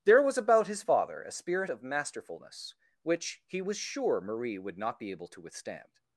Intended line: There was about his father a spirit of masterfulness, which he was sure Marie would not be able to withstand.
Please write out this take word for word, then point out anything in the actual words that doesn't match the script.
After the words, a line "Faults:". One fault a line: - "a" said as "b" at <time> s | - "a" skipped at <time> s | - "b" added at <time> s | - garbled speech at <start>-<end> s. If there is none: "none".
There was about his father a spirit of masterfulness, which he was sure Marie would not be able to withstand.
Faults:
none